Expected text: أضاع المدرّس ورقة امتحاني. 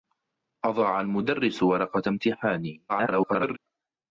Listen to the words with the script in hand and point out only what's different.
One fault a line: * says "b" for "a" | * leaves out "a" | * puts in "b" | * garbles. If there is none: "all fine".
* garbles